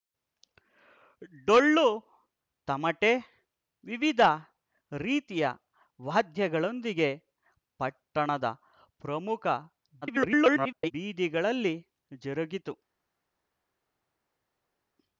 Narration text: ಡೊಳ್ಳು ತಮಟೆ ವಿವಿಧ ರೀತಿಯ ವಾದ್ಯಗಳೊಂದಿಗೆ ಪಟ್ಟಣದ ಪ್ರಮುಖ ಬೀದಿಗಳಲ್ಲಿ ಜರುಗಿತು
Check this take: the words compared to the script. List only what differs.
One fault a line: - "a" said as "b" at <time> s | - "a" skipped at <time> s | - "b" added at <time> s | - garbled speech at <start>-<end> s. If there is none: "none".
- garbled speech at 10.0-10.9 s